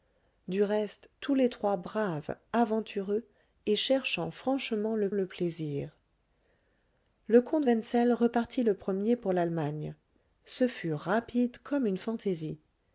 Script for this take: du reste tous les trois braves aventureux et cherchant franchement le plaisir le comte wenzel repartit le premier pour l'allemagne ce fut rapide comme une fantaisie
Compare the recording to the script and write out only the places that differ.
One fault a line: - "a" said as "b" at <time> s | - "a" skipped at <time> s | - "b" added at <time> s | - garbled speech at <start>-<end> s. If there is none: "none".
- "le" added at 5.1 s